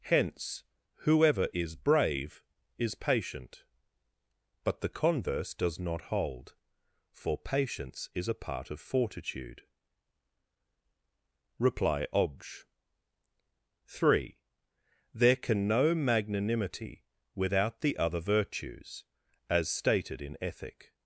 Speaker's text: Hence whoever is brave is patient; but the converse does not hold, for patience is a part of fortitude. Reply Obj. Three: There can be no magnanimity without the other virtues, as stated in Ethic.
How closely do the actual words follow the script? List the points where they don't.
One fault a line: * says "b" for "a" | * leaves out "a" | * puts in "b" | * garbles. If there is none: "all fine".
* leaves out "be"